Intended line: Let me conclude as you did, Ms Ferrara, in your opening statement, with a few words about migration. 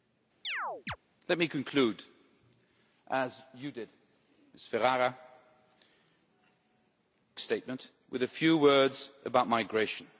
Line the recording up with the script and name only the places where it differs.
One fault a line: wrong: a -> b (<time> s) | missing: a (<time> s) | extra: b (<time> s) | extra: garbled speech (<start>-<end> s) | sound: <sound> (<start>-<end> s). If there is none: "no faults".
sound: chirp (0.4-1.0 s)
missing: in your opening (5.2 s)